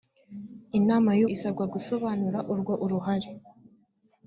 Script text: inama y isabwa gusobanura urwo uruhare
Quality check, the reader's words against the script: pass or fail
pass